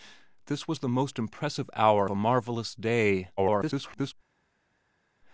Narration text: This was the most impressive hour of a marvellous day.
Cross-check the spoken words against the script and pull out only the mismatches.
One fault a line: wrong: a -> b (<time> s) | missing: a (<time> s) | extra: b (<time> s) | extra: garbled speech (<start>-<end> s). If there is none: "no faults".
missing: of (2.1 s)
extra: garbled speech (3.4-4.1 s)